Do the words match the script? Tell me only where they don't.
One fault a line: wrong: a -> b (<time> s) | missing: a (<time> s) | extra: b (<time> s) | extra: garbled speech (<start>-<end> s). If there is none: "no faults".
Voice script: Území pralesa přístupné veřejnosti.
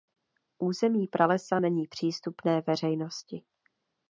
extra: není (1.6 s)